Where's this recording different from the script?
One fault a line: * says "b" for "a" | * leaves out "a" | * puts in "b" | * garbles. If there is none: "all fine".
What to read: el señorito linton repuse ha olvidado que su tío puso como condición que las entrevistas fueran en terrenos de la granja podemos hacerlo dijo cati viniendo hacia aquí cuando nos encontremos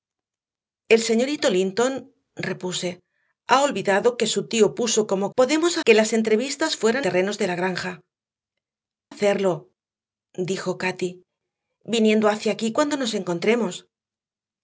* says "podemos" for "condición"
* leaves out "en"
* leaves out "podemos"